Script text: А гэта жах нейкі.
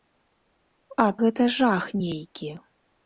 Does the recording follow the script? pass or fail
pass